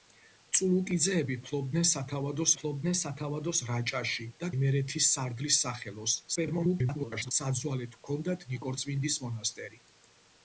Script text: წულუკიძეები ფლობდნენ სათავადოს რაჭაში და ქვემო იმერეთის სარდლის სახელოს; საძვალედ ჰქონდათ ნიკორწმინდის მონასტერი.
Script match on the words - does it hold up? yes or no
no